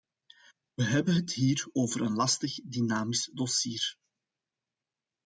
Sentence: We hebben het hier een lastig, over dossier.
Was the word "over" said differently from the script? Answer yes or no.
yes